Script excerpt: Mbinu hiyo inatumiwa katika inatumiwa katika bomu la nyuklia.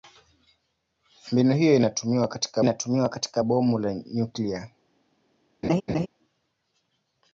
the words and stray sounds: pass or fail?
fail